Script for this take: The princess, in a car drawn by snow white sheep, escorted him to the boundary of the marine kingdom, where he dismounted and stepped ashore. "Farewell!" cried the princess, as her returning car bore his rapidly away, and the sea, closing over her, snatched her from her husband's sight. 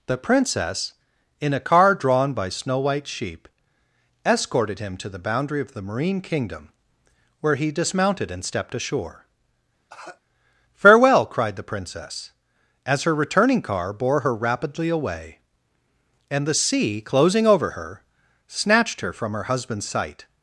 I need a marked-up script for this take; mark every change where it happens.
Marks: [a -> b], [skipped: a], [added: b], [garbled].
The princess, in a car drawn by snow white sheep, escorted him to the boundary of the marine kingdom, where he dismounted and stepped ashore. "Farewell!" cried the princess, as her returning car bore [his -> her] rapidly away, and the sea, closing over her, snatched her from her husband's sight.